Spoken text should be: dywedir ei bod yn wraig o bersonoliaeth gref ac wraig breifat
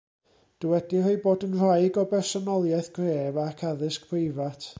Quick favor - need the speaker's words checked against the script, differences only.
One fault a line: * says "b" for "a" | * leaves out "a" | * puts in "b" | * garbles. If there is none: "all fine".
* says "addysg" for "wraig"